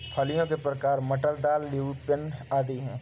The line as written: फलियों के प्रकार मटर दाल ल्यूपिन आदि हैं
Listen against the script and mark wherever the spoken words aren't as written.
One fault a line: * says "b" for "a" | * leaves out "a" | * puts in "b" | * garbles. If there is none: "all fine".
all fine